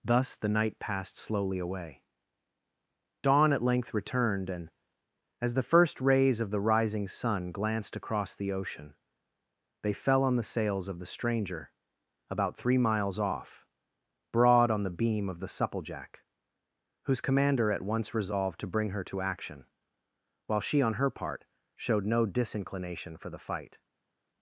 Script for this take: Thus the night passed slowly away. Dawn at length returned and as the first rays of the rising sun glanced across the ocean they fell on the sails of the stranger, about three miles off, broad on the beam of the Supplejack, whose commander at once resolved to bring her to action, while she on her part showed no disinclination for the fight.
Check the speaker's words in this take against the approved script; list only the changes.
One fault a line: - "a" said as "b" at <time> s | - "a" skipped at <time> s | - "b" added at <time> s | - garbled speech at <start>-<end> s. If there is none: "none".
none